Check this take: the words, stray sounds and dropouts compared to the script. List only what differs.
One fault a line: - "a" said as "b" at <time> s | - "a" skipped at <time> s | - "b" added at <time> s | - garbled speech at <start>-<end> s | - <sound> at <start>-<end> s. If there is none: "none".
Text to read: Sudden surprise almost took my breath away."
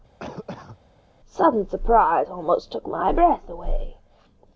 - cough at 0.2-0.8 s